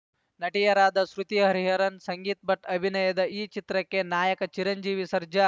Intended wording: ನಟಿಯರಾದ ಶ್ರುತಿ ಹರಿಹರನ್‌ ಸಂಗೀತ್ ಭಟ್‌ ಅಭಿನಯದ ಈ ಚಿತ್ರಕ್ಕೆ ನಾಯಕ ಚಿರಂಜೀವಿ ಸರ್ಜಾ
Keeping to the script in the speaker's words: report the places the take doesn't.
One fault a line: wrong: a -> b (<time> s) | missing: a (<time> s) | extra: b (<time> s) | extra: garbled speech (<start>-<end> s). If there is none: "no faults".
no faults